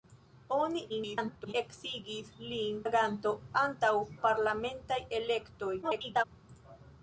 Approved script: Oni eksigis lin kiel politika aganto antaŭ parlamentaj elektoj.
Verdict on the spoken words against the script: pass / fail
fail